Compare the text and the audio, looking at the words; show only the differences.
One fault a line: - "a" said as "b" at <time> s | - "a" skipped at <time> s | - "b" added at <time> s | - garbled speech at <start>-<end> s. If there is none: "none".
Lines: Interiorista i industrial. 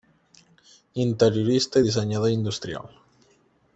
- "dissenyador" added at 1.9 s